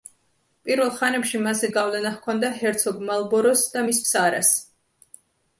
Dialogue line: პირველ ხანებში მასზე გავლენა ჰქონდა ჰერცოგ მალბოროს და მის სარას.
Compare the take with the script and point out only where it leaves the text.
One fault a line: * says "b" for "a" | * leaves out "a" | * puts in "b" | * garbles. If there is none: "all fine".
all fine